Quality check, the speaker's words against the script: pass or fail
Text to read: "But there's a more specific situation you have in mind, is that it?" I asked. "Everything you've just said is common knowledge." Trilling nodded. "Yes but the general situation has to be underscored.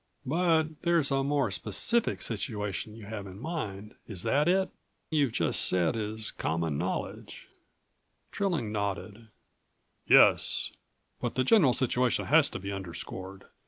fail